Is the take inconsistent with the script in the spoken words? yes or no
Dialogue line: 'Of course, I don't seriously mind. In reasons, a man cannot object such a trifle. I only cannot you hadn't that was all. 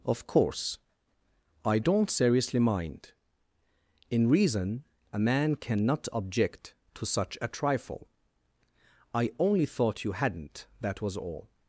yes